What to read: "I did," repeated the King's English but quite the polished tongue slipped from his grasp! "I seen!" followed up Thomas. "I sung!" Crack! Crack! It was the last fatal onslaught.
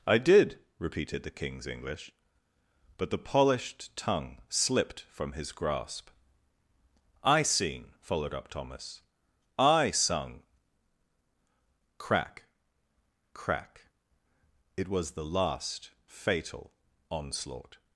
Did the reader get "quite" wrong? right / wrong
wrong